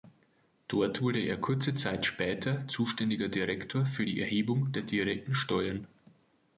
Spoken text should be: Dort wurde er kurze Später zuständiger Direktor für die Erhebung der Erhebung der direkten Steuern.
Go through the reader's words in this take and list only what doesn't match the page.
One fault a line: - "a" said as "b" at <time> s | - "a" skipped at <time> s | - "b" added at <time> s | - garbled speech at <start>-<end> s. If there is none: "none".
- "Zeit" added at 1.8 s
- "Erhebung der" skipped at 4.8 s